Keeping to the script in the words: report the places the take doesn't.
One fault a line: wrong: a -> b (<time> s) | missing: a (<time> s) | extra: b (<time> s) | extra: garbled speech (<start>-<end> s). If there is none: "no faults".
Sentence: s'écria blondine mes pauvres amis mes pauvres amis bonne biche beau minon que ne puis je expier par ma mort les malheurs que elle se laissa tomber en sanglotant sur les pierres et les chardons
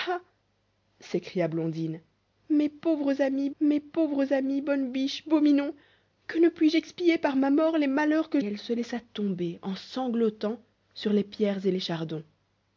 no faults